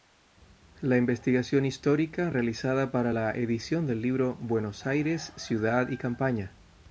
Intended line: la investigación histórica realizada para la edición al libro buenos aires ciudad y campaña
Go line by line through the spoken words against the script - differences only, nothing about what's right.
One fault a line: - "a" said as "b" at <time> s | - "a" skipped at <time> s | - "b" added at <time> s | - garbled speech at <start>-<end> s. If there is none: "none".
- "al" said as "del" at 3.9 s